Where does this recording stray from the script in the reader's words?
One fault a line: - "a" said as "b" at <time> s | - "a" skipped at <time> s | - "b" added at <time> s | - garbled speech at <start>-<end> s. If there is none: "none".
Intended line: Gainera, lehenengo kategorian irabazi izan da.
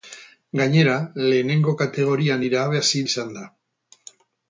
none